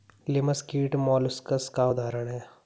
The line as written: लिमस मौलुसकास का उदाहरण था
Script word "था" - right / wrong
wrong